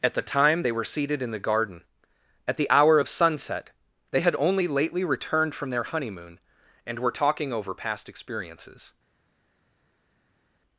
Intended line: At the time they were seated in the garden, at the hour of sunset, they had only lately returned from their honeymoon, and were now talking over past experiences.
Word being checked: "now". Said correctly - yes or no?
no